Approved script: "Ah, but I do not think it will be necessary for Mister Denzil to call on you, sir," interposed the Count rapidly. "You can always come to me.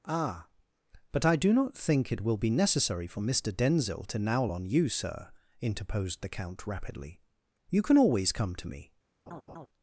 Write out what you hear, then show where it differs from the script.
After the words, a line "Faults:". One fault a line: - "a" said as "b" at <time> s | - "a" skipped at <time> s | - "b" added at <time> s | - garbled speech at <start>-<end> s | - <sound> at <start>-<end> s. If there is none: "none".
"Ah, but I do not think it will be necessary for Mister Denzil to nowl on you, sir," interposed the Count rapidly. "You can always come to me.
Faults:
- "call" said as "nowl" at 4.2 s
- laugh at 9.3-9.7 s